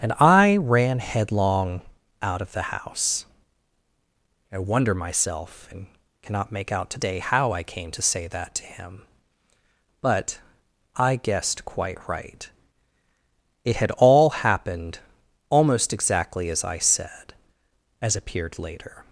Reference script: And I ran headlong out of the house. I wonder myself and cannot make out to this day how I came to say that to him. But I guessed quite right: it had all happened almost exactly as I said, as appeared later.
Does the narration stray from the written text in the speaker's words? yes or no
yes